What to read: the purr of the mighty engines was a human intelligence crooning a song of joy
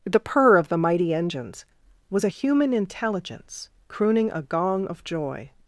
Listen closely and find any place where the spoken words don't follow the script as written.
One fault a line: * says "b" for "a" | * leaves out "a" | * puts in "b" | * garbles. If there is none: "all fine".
* says "gong" for "song"